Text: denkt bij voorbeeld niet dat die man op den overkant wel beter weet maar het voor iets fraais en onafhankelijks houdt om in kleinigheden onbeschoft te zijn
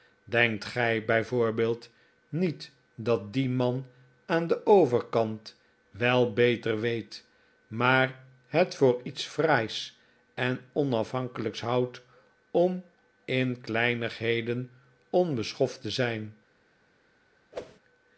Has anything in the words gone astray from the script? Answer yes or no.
yes